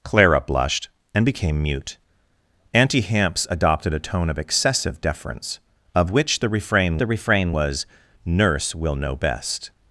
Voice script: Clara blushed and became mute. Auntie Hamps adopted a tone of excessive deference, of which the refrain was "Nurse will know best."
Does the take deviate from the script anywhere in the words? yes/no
yes